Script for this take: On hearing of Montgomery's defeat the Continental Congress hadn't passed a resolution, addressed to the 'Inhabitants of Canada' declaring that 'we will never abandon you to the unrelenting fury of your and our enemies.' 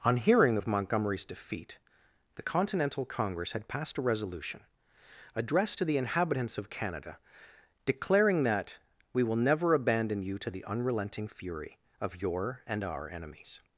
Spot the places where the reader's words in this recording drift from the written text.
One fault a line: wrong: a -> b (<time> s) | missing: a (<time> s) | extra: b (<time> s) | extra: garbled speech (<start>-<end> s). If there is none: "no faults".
wrong: hadn't -> had (3.5 s)